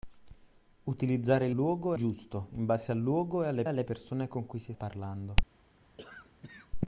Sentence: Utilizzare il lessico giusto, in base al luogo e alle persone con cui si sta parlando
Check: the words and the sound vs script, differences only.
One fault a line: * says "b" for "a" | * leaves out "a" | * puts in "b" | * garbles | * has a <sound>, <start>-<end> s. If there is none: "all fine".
* says "luogo" for "lessico"
* puts in "alle"
* leaves out "sta"
* has a cough, 6.0-6.7 s